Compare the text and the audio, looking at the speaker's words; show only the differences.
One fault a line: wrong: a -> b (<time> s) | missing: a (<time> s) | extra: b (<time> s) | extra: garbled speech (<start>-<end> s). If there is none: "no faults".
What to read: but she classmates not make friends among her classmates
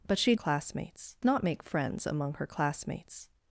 no faults